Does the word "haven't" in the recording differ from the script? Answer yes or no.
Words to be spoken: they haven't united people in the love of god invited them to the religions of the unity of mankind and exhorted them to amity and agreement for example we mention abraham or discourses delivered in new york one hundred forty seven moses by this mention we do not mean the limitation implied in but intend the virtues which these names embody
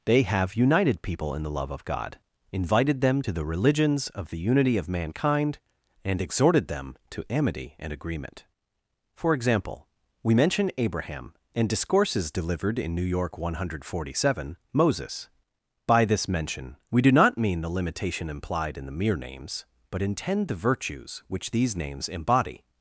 yes